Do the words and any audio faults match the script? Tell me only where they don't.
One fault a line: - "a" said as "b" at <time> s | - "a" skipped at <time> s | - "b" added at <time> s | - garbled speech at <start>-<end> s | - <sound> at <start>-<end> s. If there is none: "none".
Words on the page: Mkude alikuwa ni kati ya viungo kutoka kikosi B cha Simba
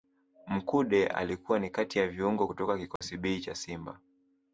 - dropout at 3.0-3.0 s